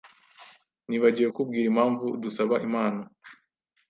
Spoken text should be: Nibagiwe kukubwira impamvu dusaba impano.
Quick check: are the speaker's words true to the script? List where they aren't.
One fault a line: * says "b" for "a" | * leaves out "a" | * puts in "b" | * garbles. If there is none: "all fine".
all fine